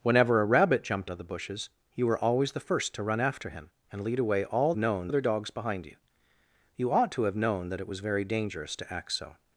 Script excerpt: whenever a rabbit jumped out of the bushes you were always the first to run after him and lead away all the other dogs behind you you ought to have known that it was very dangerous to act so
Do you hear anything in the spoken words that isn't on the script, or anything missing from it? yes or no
yes